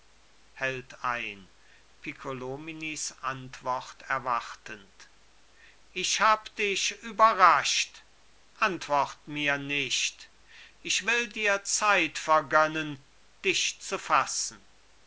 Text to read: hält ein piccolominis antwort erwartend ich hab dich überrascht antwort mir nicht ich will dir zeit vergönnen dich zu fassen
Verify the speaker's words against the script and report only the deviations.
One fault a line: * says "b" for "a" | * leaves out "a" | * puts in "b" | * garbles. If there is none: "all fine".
all fine